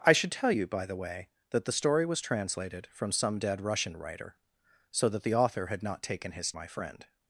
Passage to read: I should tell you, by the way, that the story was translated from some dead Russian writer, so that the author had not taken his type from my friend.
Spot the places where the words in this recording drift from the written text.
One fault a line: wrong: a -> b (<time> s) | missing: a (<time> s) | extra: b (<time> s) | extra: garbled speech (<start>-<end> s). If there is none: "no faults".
missing: type from (6.5 s)